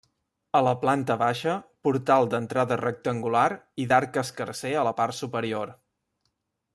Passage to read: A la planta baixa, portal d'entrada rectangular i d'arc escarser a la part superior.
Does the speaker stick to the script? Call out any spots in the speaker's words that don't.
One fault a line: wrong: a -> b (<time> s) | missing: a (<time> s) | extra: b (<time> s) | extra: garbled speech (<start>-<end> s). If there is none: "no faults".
no faults